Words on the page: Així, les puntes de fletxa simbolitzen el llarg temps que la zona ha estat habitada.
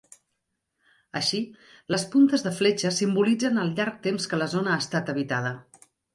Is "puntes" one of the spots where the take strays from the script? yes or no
no